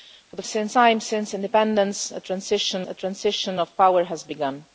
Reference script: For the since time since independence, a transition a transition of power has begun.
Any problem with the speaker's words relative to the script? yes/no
no